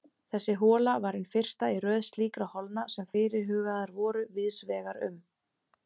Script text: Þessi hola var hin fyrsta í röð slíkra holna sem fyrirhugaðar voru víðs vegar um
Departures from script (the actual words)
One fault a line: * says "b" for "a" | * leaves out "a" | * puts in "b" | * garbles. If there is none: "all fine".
all fine